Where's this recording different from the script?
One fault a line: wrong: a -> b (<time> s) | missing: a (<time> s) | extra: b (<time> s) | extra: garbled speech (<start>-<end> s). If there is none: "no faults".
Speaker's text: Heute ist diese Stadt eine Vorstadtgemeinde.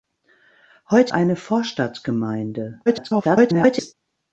missing: ist diese Stadt (1.1 s)
extra: garbled speech (2.9-3.9 s)